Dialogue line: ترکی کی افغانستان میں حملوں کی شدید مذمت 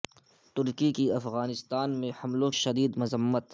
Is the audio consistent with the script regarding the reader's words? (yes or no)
no